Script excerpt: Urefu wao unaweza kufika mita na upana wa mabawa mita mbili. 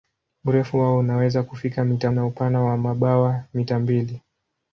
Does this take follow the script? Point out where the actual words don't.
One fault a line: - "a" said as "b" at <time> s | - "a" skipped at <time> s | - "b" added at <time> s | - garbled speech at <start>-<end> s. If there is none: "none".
none